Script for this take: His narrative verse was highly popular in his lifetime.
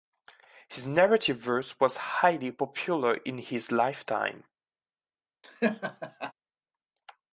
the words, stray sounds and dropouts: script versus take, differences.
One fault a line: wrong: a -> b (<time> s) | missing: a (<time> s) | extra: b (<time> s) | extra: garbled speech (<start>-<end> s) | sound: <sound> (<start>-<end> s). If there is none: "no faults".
sound: laugh (5.4-6.3 s)